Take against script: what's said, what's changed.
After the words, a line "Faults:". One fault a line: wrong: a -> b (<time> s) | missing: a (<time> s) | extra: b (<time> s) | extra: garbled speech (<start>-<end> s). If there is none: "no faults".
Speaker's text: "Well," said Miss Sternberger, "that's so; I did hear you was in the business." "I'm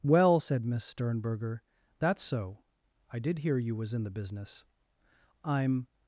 "Well," said Miss Sternberger, "that's so; I did hear you was in the business." "I'm
Faults:
no faults